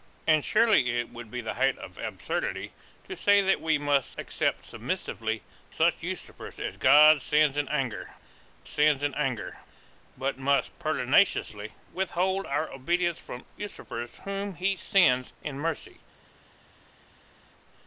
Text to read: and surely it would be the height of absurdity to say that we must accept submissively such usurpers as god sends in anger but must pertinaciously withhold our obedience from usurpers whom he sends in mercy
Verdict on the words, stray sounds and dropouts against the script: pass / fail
fail